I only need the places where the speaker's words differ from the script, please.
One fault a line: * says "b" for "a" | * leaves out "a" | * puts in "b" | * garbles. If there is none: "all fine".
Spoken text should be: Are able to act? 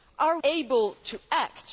all fine